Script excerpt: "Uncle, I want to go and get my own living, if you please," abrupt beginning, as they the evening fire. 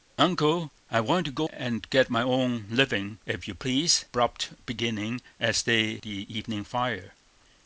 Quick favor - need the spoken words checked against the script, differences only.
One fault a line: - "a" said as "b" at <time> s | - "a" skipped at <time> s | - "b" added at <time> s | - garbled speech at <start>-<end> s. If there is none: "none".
none